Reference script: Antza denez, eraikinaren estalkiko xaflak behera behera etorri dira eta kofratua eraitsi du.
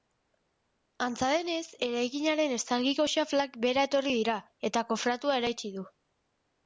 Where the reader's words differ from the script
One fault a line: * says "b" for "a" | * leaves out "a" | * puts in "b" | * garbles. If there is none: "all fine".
* leaves out "behera"